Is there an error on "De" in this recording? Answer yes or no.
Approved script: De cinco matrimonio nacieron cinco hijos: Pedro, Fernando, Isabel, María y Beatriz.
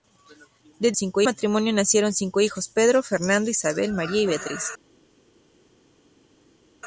no